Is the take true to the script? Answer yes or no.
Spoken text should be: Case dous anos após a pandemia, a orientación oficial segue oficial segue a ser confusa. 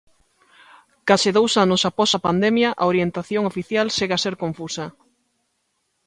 no